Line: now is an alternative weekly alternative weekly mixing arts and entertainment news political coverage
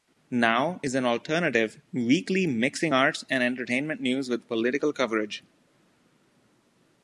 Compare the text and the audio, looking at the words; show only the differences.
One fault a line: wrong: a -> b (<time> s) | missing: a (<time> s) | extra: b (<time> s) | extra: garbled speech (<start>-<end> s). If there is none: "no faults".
missing: alternative weekly (2.5 s)
extra: with (4.3 s)